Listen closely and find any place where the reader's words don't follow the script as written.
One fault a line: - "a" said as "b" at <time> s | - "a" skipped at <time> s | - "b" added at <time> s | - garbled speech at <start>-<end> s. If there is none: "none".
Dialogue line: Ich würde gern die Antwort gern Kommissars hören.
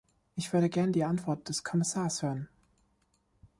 - "gern" said as "des" at 1.5 s